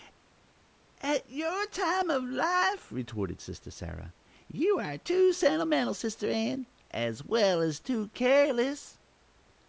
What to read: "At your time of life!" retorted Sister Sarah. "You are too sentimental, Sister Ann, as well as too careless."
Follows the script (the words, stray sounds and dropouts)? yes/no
yes